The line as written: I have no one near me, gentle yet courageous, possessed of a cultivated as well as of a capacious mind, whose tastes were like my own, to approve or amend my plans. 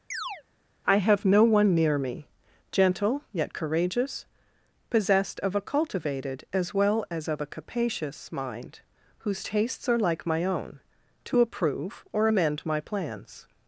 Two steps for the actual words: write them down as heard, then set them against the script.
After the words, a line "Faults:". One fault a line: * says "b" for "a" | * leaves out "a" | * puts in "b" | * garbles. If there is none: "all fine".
I have no one near me, gentle yet courageous, possessed of a cultivated as well as of a capacious mind, whose tastes are like my own, to approve or amend my plans.
Faults:
* says "are" for "were"